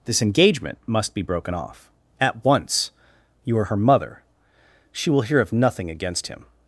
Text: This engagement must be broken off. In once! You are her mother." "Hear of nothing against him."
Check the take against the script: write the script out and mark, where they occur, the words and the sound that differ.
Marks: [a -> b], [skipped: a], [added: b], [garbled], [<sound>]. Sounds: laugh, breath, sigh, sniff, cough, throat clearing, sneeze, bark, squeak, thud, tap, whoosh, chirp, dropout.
This engagement must be broken off. [In -> At] once! You are her mother." [added: She will] "Hear of nothing against him."